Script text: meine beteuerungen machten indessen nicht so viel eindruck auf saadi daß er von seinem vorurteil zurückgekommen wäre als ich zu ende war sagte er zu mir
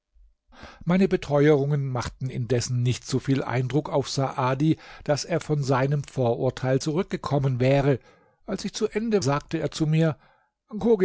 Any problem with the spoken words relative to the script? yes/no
yes